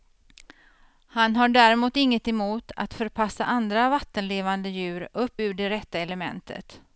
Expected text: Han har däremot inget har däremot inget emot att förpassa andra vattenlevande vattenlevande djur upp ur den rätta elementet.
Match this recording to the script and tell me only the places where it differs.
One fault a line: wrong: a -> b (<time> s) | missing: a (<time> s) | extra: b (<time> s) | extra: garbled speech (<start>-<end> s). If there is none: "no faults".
missing: har däremot inget (2.3 s)
missing: vattenlevande (4.7 s)
wrong: den -> det (5.5 s)